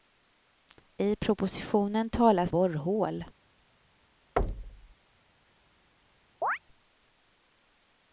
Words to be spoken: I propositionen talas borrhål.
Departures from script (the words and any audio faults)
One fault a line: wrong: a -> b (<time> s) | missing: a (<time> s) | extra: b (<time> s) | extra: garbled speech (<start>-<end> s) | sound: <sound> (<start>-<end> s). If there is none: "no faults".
sound: thud (4.4-5.0 s)
sound: chirp (6.4-6.6 s)